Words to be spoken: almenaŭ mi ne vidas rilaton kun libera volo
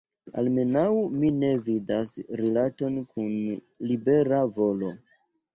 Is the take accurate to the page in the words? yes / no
yes